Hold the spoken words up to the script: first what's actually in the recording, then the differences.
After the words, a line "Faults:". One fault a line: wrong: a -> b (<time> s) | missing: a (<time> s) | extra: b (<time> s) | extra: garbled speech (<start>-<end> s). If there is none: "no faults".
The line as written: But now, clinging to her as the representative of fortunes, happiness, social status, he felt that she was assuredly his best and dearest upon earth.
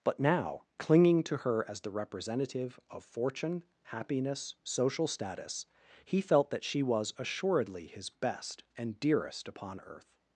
But now, clinging to her as the representative of fortune, happiness, social status, he felt that she was assuredly his best and dearest upon earth.
Faults:
wrong: fortunes -> fortune (3.0 s)